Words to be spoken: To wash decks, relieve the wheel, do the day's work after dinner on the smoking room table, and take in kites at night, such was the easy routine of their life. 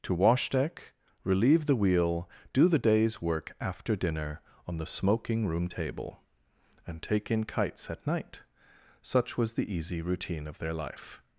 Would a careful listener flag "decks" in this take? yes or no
yes